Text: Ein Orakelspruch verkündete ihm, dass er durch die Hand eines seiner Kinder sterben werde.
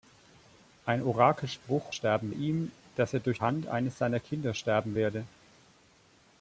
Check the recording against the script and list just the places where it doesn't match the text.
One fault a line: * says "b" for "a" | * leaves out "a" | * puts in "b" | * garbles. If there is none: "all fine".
* says "sterben" for "verkündete"
* leaves out "die"